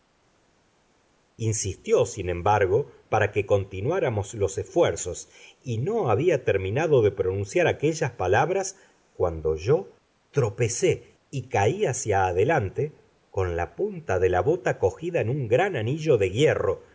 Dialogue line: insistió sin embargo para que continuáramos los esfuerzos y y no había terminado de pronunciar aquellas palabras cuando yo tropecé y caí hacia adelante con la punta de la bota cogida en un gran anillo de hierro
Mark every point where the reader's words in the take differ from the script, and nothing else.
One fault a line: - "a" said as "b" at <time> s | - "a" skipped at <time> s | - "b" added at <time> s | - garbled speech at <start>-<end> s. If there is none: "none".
- "y" skipped at 5.8 s